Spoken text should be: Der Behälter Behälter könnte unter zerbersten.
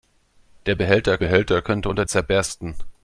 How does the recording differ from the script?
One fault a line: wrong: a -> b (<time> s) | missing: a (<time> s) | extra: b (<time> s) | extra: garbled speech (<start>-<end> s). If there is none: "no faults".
no faults